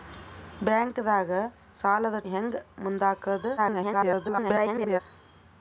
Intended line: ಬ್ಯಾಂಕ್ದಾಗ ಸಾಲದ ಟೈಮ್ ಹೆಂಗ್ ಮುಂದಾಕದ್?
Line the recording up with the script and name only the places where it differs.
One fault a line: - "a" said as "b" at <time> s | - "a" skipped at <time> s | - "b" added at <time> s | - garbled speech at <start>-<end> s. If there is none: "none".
- "ಟೈಮ್" skipped at 2.2 s
- garbled speech at 3.6-5.0 s